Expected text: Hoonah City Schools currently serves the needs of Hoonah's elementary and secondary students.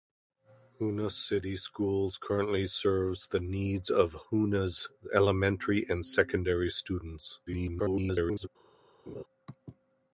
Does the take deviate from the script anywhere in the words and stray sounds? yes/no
yes